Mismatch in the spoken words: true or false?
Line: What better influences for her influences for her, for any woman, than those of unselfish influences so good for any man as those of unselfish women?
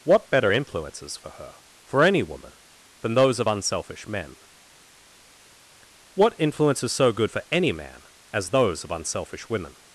true